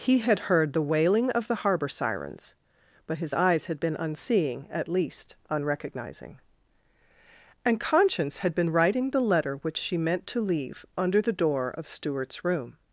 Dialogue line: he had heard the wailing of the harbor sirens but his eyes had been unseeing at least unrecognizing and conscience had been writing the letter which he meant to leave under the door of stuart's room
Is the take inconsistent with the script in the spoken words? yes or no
yes